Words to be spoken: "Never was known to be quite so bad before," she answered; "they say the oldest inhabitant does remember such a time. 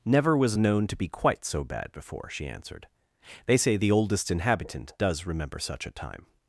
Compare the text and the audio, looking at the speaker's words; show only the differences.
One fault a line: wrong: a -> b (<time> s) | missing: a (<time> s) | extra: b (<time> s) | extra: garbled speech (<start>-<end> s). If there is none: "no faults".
no faults